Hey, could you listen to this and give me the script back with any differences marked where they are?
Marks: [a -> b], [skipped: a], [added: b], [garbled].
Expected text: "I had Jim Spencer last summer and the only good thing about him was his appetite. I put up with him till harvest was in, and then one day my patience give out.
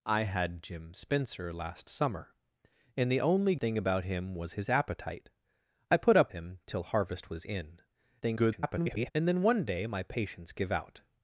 "I had Jim Spencer last summer and the only [skipped: good] thing about him was his appetite. I put up [skipped: with] him till harvest was in, [garbled] and then one day my patience give out.